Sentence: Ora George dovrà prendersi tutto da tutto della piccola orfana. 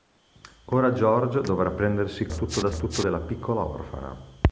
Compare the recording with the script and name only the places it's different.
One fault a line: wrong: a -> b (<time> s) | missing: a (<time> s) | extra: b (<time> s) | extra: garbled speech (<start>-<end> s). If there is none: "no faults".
no faults